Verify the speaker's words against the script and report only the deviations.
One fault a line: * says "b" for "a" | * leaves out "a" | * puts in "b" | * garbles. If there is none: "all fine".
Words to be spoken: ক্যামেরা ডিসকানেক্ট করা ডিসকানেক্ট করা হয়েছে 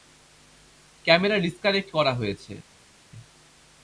* leaves out "ডিসকানেক্ট করা"